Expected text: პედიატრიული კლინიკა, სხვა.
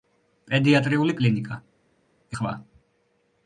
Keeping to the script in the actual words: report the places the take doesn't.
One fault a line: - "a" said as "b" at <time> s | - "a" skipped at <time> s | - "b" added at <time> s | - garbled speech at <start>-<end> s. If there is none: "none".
none